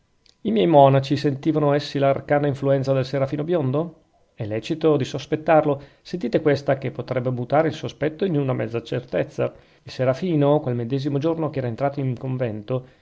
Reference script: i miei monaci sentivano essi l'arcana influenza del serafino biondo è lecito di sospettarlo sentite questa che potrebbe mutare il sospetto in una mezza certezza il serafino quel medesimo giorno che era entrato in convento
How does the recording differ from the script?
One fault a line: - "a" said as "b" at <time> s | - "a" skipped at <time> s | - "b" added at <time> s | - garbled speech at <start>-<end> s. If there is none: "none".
none